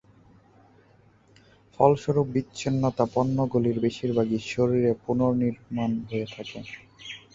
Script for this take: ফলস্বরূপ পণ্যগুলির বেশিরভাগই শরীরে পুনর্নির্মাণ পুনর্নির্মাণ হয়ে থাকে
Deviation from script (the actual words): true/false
true